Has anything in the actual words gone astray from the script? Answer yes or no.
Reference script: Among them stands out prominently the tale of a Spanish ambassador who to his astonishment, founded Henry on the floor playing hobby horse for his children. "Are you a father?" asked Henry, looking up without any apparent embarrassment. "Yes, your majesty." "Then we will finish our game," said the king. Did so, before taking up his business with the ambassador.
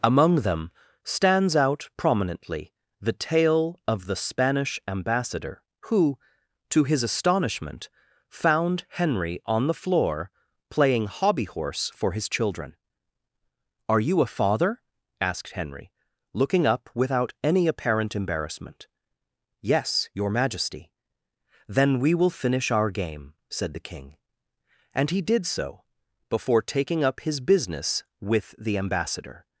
yes